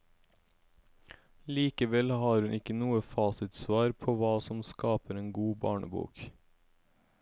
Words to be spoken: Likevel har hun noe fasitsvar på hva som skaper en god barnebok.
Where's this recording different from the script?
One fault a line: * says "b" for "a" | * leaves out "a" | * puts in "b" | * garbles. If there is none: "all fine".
* puts in "ikke"